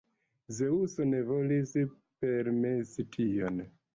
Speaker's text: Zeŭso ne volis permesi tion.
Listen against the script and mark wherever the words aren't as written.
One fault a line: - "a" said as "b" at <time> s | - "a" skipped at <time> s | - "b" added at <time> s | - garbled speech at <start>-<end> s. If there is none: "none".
none